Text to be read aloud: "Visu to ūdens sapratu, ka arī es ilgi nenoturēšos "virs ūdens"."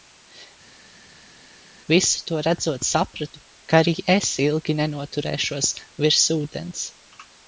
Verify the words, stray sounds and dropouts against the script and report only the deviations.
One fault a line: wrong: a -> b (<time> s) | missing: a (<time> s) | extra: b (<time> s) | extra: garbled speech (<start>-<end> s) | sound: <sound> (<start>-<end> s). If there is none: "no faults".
wrong: ūdens -> redzot (2.5 s)